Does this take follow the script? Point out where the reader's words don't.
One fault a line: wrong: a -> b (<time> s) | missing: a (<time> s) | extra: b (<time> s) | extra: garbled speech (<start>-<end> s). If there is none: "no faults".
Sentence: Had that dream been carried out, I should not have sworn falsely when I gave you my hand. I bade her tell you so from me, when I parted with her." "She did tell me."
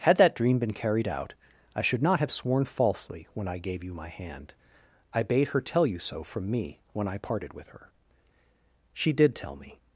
no faults